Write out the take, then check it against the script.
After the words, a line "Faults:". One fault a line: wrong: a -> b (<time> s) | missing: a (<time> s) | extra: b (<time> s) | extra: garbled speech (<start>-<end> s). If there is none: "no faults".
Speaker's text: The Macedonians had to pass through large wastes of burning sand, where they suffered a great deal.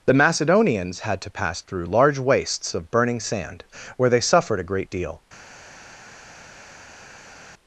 The Macedonians had to pass through large wastes of burning sand, where they suffered a great deal.
Faults:
no faults